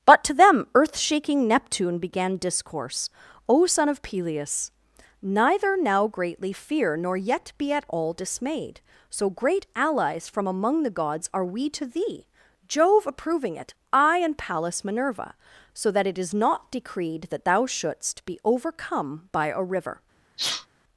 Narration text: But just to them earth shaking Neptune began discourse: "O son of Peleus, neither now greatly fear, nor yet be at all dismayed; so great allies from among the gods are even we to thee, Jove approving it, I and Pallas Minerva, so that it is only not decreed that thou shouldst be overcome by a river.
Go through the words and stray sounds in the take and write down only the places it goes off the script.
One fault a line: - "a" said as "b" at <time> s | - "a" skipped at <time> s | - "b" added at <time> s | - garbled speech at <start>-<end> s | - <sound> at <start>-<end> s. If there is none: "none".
- "just" skipped at 0.2 s
- "even" skipped at 11.4 s
- "only" skipped at 16.3 s
- sneeze at 20.4-20.7 s